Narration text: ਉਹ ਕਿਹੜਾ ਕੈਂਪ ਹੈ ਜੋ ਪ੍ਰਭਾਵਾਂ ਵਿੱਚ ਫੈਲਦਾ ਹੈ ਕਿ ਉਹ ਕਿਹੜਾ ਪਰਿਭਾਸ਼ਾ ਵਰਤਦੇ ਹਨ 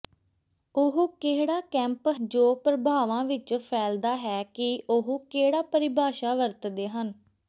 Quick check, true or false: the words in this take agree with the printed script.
false